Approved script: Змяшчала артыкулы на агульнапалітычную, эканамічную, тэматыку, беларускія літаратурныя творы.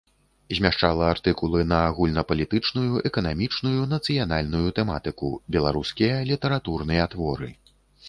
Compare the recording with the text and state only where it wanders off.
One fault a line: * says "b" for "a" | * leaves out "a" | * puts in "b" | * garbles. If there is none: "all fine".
* puts in "нацыянальную"